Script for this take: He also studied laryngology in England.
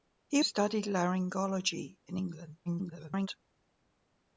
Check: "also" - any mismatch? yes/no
yes